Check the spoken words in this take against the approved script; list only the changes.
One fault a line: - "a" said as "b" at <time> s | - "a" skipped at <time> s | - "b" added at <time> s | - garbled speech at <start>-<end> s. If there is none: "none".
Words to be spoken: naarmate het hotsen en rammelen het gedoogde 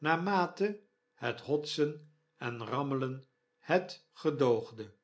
none